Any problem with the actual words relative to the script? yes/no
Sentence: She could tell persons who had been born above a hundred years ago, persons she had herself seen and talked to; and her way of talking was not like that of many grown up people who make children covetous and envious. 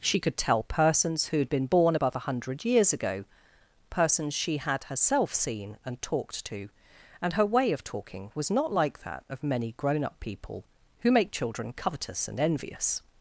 no